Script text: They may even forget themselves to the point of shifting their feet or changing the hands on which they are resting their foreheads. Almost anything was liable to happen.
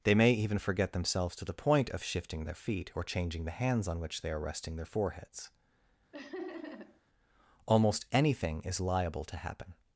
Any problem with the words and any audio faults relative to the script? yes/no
yes